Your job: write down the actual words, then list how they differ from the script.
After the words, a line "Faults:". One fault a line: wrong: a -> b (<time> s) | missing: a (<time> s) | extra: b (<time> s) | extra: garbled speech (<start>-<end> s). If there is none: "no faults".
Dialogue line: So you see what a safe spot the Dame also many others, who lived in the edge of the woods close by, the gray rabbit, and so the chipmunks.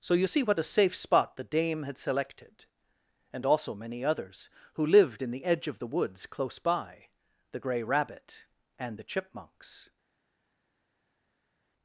So you see what a safe spot the Dame had selected, and also many others, who lived in the edge of the woods close by, the gray rabbit, and the chipmunks.
Faults:
extra: had selected and (1.8 s)
missing: so (9.0 s)